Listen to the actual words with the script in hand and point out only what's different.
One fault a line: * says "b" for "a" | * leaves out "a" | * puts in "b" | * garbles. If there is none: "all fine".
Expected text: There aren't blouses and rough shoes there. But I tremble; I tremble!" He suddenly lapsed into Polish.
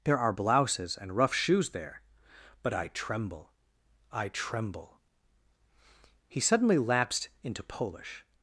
* says "are" for "aren't"